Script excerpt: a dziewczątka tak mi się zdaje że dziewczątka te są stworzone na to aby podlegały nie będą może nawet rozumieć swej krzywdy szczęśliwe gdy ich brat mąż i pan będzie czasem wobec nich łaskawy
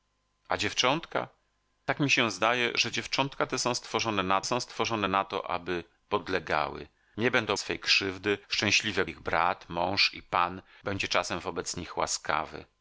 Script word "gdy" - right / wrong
wrong